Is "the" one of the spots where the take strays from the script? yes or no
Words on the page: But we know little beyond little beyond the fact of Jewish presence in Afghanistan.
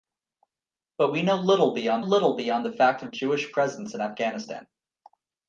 no